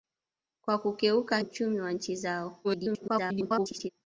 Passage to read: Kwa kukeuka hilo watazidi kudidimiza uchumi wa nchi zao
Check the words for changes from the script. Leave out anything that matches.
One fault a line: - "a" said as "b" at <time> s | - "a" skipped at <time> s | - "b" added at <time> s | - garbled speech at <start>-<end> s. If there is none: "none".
- "hilo watazidi kudidimiza" skipped at 1.4 s
- garbled speech at 2.6-3.9 s